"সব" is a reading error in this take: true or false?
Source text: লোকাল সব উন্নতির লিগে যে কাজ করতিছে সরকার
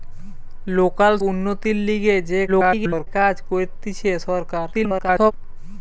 true